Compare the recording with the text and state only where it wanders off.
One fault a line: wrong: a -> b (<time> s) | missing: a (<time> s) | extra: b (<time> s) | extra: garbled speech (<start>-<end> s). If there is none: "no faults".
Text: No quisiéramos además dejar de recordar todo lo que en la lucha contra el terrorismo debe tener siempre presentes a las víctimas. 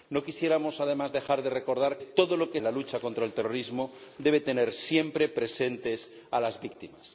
no faults